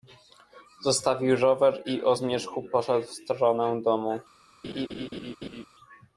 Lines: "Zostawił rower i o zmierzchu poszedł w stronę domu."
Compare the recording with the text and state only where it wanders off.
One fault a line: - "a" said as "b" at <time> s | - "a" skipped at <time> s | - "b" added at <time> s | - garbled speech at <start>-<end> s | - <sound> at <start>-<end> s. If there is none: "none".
- laugh at 4.6-5.6 s